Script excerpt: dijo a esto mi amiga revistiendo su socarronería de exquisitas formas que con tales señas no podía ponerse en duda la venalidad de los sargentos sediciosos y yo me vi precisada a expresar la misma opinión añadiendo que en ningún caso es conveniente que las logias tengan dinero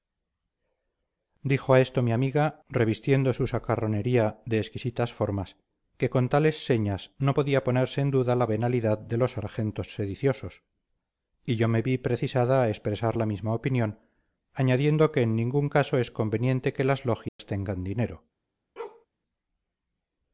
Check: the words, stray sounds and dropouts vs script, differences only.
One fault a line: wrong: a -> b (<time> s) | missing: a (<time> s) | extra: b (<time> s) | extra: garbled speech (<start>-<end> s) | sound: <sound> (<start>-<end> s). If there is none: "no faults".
sound: dropout (17.3-17.4 s)
sound: bark (18.8-19.1 s)